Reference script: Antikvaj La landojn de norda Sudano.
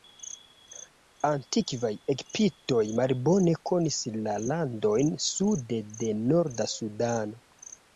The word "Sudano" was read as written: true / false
true